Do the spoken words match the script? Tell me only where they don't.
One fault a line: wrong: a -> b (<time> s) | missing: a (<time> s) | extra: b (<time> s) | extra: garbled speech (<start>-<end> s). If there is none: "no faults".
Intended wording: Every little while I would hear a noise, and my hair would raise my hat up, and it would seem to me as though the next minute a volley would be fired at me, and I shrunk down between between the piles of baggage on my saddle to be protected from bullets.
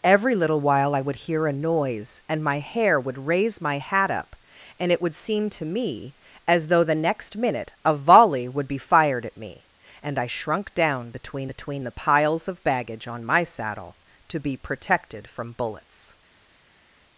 no faults